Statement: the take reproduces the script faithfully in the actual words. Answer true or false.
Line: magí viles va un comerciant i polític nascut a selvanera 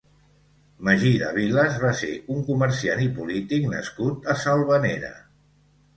false